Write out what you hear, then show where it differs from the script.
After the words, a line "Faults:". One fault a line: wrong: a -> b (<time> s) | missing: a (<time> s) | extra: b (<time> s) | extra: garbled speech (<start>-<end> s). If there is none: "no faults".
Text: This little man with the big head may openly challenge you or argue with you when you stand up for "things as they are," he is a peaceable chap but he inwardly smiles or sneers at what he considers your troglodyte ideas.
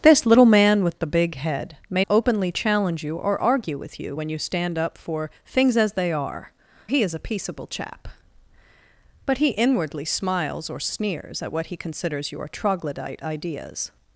This little man with the big head may openly challenge you or argue with you when you stand up for "things as they are," he is a peaceable chap but he inwardly smiles or sneers at what he considers your troglodyte ideas.
Faults:
no faults